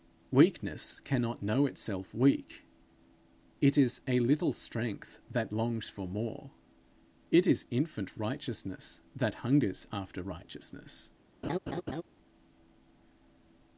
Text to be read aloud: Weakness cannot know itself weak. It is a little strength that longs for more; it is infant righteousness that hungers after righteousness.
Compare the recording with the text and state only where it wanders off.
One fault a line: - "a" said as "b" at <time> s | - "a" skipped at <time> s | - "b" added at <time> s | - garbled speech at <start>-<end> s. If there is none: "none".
none